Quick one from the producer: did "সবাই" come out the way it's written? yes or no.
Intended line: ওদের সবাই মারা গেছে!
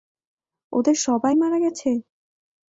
yes